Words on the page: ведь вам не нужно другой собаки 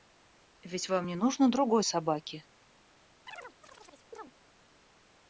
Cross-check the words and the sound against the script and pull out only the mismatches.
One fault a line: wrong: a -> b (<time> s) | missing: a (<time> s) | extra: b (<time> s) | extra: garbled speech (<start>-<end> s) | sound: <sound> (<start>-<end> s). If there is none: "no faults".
sound: chirp (3.3-4.3 s)